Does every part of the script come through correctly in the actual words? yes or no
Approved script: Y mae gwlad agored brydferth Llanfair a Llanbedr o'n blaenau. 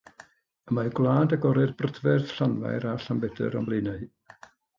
yes